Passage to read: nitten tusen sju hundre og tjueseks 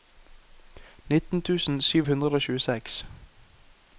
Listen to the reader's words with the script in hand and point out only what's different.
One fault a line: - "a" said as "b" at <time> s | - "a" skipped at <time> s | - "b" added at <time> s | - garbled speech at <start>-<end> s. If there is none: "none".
none